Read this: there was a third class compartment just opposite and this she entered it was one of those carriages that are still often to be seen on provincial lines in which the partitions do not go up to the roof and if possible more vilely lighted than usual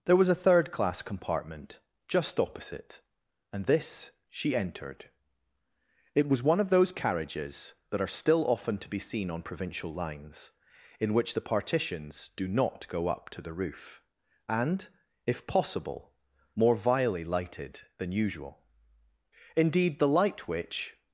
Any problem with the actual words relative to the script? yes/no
yes